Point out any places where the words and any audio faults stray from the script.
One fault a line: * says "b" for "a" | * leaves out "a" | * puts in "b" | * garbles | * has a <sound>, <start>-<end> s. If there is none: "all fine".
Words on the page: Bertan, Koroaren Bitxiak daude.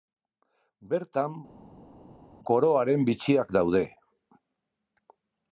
all fine